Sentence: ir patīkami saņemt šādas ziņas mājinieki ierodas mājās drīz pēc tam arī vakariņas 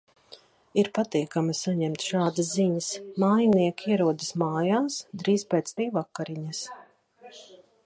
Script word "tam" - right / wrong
wrong